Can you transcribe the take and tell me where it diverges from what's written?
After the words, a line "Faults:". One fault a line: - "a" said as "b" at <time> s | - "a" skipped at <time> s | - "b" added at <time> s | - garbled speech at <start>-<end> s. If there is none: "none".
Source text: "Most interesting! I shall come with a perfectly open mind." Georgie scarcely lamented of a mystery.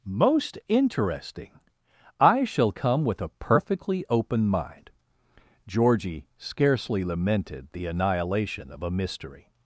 "Most interesting! I shall come with a perfectly open mind." Georgie scarcely lamented the annihilation of a mystery.
Faults:
- "the annihilation" added at 7.7 s